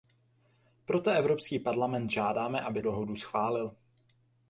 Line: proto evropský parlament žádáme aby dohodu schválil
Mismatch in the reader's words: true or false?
false